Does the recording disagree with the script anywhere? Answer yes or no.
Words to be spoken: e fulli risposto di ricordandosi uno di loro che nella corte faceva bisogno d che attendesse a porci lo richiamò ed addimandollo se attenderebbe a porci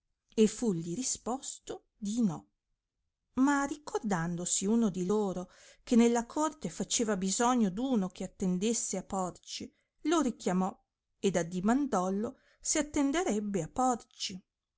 yes